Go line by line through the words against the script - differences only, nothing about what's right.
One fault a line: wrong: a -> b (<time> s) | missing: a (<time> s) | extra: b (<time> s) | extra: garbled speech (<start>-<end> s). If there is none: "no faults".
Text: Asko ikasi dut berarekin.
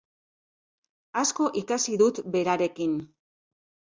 no faults